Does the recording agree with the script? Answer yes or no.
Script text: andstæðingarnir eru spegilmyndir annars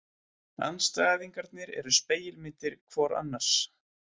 no